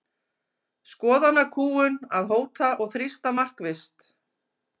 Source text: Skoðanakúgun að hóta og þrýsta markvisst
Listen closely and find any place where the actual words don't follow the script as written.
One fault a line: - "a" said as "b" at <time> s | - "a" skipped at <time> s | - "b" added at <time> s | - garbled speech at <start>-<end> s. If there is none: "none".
none